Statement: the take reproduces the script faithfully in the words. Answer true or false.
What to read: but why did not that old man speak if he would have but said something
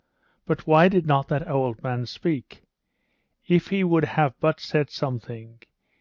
true